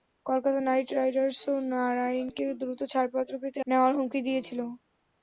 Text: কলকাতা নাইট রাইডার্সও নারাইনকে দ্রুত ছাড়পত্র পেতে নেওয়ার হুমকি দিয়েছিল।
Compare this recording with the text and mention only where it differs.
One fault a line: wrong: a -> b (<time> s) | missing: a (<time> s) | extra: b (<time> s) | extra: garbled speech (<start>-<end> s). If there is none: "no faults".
no faults